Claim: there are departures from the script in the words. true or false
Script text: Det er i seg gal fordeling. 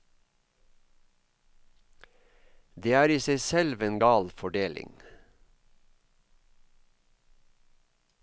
true